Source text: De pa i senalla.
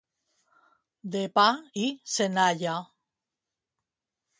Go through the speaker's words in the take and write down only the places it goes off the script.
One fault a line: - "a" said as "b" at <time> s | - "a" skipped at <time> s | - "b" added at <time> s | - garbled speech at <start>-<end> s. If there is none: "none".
none